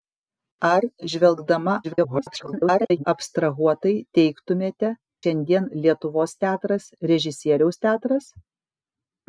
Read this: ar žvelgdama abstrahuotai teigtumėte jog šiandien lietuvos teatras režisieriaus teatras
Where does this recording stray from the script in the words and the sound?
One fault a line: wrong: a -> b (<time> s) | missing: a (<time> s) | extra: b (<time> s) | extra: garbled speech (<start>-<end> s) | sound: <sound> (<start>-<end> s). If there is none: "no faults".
extra: garbled speech (1.8-3.0 s)
missing: jog (4.9 s)